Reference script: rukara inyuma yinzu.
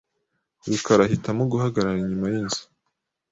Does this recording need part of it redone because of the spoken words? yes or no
yes